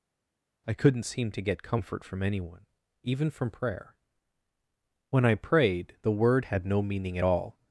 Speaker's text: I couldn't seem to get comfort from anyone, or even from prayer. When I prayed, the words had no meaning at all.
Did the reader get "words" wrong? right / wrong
wrong